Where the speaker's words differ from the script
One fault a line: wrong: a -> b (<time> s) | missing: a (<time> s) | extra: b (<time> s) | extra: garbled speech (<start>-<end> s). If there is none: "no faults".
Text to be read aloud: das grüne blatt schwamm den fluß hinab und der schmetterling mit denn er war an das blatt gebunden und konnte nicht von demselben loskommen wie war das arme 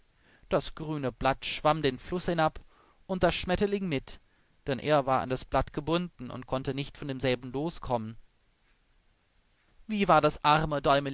no faults